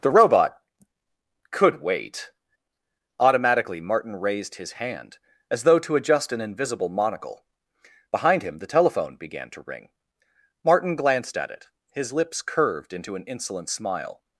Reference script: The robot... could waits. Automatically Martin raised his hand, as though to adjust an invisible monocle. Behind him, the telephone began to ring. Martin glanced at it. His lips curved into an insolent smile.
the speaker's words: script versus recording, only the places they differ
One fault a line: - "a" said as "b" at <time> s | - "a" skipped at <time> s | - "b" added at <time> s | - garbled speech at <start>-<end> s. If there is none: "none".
- "waits" said as "wait" at 1.8 s